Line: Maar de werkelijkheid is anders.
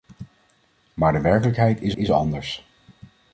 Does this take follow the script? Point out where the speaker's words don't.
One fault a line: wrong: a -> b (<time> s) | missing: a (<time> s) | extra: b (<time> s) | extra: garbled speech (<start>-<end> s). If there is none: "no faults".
extra: is (2.0 s)